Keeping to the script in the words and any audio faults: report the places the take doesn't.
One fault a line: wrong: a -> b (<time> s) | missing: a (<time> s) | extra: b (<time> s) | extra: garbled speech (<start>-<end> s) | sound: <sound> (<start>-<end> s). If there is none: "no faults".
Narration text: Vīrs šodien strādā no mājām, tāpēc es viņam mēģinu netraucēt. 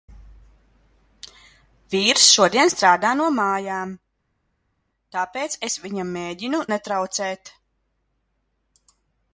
no faults